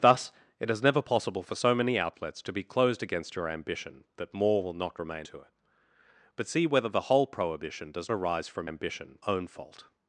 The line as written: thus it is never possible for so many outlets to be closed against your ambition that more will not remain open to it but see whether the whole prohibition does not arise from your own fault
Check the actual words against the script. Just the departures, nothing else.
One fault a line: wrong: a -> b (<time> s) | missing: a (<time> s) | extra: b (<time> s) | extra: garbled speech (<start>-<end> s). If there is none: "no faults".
missing: open (5.3 s)
missing: not (8.1 s)
wrong: your -> ambition (8.6 s)